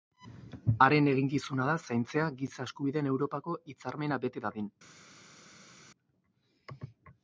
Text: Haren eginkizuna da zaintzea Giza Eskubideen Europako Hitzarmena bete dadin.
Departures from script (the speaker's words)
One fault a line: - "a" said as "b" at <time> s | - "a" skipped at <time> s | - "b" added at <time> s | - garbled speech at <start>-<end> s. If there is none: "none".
none